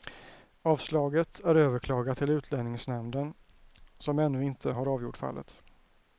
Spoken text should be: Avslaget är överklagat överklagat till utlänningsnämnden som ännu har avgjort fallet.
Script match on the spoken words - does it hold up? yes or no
no